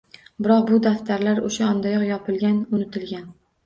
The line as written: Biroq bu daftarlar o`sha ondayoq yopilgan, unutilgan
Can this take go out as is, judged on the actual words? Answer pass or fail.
pass